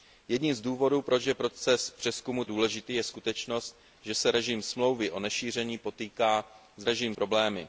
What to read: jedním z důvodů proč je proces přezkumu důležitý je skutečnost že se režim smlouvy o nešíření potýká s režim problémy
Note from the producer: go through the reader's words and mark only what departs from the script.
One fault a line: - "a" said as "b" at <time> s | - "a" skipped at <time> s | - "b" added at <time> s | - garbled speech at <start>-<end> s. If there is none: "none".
none